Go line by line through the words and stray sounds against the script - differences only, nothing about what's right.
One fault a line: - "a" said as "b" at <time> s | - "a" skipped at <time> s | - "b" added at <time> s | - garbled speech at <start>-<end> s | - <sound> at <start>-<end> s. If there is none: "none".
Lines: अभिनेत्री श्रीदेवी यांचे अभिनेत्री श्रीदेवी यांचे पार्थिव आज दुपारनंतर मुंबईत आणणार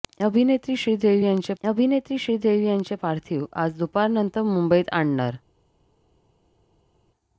none